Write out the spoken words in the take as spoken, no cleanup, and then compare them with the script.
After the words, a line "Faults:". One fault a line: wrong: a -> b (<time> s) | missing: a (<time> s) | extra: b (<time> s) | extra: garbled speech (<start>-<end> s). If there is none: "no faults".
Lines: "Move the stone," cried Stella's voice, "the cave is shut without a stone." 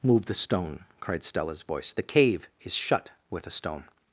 "Move the stone," cried Stella's voice, "the cave is shut with a stone."
Faults:
wrong: without -> with (3.3 s)